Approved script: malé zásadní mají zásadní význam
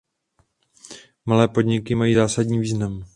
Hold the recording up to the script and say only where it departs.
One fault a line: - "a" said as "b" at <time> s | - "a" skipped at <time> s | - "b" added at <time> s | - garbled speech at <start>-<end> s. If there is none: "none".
- "zásadní" said as "podniky" at 1.5 s